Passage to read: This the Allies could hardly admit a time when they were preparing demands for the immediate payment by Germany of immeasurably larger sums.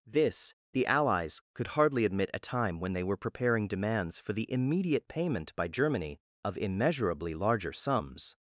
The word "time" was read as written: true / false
true